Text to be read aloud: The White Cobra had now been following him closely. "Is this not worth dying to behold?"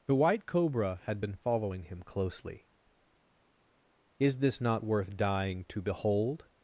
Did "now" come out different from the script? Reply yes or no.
yes